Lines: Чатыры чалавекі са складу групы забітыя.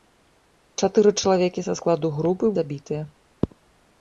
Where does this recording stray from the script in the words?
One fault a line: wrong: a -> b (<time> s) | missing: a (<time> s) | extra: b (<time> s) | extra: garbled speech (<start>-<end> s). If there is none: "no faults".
no faults